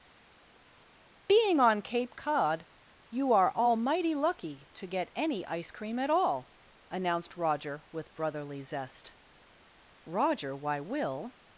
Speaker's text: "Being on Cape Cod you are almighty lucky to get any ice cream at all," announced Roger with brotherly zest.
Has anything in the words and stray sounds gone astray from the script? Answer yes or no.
yes